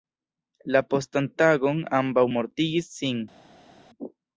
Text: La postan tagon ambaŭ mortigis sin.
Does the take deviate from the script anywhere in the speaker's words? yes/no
no